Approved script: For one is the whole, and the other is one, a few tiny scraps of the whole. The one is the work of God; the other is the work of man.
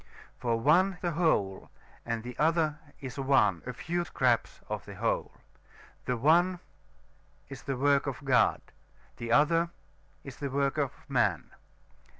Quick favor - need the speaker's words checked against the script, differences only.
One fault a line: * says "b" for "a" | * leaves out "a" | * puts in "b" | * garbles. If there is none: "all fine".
* leaves out "is"
* leaves out "tiny"